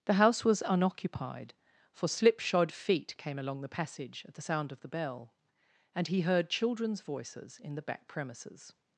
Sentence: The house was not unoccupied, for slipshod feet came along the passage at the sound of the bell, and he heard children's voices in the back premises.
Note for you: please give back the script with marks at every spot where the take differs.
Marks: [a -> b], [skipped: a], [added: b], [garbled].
The house was [skipped: not] unoccupied, for slipshod feet came along the passage at the sound of the bell, and he heard children's voices in the back premises.